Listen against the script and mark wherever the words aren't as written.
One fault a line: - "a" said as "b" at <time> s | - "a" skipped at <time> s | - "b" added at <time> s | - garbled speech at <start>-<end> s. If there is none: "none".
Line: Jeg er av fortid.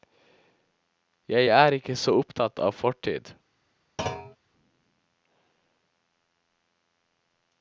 - "ikke så opptatt" added at 1.8 s